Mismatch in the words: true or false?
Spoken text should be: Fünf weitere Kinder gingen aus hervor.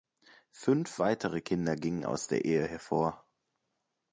true